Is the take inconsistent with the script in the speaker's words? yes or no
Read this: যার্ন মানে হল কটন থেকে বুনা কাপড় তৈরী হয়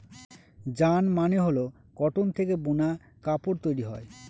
no